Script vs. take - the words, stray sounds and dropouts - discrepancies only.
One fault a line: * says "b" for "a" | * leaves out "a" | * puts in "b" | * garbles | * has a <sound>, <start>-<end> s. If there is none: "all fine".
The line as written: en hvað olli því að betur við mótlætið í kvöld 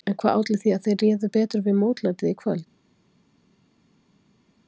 * puts in "þeir réðu"